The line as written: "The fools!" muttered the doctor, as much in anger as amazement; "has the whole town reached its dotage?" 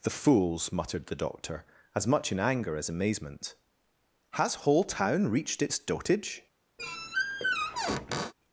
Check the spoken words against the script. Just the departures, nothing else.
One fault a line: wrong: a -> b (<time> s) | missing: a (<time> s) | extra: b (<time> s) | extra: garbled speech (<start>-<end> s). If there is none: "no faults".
missing: the (4.5 s)